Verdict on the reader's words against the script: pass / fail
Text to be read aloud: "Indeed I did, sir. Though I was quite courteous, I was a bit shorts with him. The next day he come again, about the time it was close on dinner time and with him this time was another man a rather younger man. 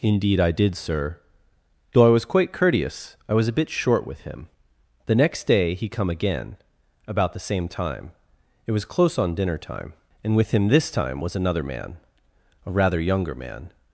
fail